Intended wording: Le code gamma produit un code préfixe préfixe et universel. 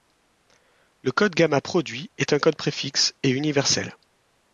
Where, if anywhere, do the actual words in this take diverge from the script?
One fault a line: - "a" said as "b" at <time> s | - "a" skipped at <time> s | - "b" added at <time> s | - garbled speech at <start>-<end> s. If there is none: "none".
- "est" added at 2.2 s
- "préfixe" skipped at 3.1 s